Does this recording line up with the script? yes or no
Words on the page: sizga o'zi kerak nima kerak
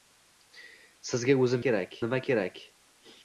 yes